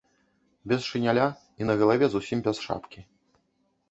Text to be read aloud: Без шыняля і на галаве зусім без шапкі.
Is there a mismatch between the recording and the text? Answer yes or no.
no